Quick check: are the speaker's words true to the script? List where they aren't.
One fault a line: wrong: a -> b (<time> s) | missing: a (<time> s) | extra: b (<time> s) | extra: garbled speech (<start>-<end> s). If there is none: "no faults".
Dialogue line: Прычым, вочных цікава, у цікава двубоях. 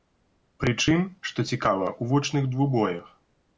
wrong: вочных -> што (1.3 s)
wrong: цікава -> вочных (2.2 s)